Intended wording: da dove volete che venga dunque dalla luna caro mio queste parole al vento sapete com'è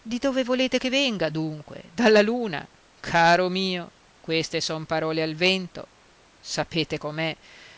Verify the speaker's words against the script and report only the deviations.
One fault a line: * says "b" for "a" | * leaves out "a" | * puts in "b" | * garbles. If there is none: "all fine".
* says "di" for "da"
* puts in "son"